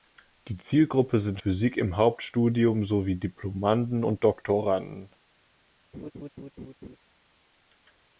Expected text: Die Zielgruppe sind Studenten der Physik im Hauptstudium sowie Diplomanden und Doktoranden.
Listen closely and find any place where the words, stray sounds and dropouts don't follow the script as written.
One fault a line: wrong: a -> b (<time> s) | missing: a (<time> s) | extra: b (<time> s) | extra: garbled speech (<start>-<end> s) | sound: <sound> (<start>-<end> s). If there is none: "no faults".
missing: Studenten der (1.4 s)
sound: laugh (5.9-7.0 s)